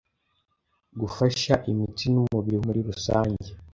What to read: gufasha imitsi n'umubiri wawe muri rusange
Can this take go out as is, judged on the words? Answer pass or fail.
fail